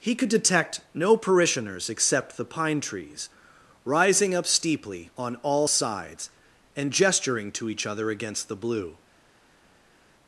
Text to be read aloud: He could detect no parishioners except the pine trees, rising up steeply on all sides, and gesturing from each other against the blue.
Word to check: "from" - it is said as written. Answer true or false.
false